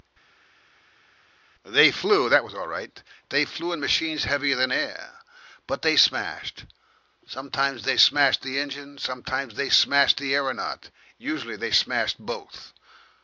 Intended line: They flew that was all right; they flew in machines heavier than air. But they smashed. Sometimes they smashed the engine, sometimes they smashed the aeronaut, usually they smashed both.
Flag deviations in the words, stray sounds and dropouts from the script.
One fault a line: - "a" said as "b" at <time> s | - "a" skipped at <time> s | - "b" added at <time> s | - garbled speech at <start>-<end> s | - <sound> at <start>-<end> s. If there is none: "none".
none